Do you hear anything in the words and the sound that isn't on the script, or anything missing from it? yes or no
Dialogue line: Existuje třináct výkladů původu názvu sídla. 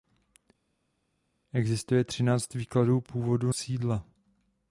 yes